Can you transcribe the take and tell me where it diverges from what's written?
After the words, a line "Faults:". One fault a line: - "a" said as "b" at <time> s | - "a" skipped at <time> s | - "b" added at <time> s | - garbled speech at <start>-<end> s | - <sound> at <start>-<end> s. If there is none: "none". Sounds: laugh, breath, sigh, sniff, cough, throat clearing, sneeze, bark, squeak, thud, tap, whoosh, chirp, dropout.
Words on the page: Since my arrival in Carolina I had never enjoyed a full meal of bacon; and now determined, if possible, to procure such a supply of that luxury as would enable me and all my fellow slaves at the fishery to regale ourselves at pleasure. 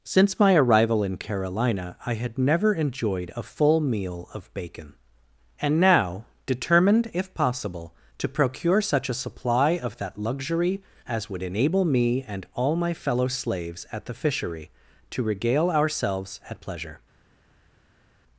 Since my arrival in Carolina I had never enjoyed a full meal of bacon; and now determined, if possible, to procure such a supply of that luxury as would enable me and all my fellow slaves at the fishery to regale ourselves at pleasure.
Faults:
none